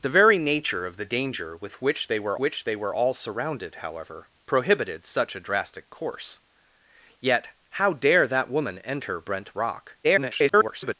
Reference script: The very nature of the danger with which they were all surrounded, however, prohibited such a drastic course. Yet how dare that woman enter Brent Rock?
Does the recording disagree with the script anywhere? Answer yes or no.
yes